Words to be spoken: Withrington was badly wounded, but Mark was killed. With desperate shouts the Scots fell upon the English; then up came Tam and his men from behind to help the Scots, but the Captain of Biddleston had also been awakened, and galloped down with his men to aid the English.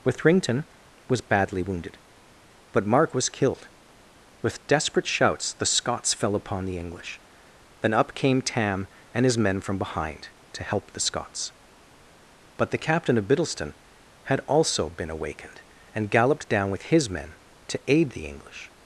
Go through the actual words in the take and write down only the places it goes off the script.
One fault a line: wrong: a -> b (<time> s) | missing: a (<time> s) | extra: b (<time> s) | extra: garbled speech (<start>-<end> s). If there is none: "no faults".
no faults